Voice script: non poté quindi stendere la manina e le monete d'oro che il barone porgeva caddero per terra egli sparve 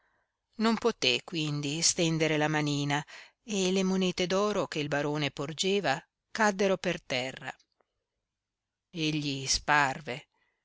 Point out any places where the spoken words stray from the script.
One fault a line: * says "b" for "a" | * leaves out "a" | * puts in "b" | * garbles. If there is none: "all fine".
all fine